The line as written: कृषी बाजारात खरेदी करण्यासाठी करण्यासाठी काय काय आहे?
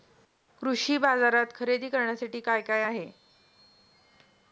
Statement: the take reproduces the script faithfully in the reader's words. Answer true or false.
false